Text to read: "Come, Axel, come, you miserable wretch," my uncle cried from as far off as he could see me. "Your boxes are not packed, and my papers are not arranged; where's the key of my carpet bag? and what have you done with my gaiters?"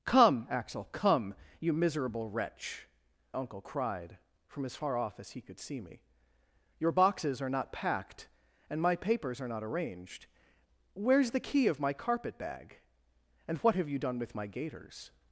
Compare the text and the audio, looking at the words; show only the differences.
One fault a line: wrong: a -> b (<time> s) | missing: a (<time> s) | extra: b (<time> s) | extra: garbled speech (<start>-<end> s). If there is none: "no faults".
missing: my (2.9 s)